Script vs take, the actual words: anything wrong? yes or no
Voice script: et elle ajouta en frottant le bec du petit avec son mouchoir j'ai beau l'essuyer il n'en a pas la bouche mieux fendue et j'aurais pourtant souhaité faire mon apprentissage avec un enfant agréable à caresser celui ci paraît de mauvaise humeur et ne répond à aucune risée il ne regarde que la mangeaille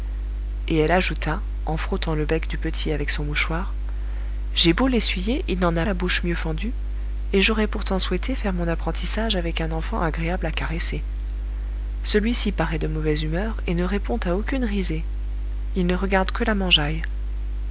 yes